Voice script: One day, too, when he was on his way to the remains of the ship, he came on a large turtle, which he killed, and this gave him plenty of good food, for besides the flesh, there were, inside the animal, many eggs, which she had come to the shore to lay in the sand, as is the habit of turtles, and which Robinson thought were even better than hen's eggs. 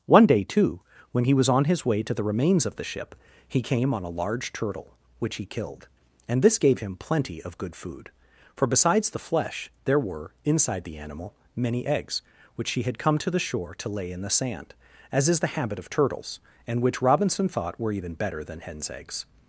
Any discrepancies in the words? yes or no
yes